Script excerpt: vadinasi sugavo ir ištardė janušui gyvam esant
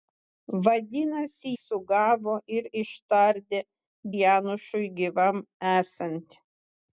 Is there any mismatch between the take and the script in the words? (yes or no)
no